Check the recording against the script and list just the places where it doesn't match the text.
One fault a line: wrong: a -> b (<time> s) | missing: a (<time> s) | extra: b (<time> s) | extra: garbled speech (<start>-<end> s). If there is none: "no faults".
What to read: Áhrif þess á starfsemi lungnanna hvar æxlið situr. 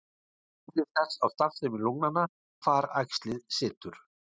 no faults